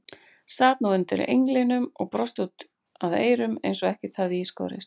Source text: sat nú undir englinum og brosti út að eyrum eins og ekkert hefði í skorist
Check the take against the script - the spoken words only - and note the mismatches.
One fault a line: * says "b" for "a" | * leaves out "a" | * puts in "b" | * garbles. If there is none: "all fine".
all fine